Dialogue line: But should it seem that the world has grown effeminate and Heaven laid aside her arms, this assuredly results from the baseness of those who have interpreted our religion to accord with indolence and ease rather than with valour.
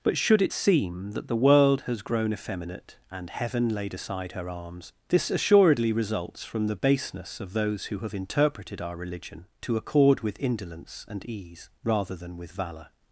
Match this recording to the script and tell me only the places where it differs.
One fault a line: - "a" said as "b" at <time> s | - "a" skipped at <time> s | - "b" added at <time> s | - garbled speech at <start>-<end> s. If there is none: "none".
none